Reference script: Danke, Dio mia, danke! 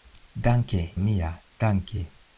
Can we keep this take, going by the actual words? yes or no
no